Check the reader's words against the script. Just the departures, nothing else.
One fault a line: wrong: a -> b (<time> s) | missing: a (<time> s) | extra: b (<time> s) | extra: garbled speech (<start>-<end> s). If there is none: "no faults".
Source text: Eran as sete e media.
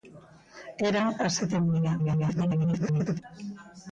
extra: garbled speech (2.0-3.2 s)